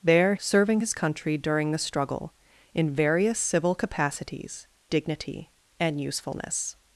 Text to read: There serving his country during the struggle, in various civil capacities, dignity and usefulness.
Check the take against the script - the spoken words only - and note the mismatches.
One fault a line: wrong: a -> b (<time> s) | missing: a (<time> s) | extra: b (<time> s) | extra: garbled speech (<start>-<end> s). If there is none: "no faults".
no faults